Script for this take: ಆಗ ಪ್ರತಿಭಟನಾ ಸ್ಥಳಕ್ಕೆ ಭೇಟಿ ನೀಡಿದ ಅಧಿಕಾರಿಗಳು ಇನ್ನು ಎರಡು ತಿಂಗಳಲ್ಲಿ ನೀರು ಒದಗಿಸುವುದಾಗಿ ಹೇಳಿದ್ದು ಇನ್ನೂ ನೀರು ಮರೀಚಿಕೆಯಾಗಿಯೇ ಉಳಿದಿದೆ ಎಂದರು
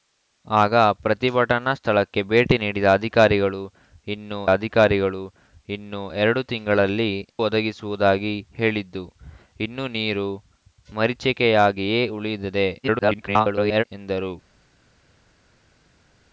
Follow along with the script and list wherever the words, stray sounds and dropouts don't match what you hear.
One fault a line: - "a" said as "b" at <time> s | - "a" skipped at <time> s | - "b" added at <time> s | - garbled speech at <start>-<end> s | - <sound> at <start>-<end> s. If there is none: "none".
- "ಅಧಿಕಾರಿಗಳು ಇನ್ನು" added at 4.5 s
- "ನೀರು" skipped at 7.1 s
- garbled speech at 12.8-13.8 s